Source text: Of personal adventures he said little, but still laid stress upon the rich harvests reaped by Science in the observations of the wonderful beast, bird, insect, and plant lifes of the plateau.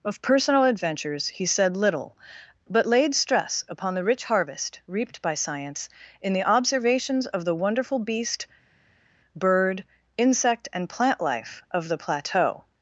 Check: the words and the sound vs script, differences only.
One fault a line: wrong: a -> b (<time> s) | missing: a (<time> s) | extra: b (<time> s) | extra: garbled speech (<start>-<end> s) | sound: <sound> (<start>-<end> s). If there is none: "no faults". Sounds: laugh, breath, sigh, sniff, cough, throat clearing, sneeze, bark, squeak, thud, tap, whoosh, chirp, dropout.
missing: still (2.9 s)
wrong: harvests -> harvest (4.2 s)
wrong: lifes -> life (11.2 s)